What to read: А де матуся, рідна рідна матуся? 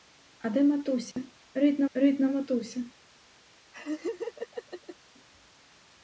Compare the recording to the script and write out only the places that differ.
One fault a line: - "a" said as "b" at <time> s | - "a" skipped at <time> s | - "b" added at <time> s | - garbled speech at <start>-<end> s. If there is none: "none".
none